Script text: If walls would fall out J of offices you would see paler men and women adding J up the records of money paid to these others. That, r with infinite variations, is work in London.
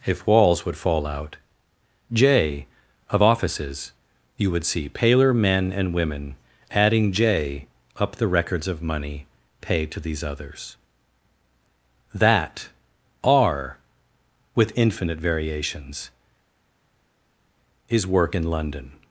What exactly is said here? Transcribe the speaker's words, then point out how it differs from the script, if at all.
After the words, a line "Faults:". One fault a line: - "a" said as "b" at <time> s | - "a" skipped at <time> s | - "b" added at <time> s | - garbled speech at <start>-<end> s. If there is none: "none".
If walls would fall out J of offices you would see paler men and women adding J up the records of money paid to these others. That, r with infinite variations, is work in London.
Faults:
none